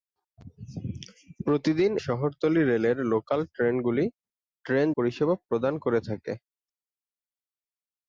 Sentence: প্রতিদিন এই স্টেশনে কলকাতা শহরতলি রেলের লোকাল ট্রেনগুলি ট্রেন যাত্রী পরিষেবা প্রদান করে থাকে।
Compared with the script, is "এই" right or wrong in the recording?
wrong